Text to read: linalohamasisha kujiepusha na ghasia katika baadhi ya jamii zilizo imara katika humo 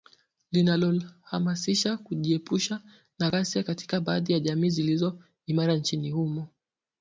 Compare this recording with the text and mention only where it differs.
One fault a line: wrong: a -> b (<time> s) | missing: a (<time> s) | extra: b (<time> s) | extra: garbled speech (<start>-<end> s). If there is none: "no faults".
wrong: katika -> nchini (5.7 s)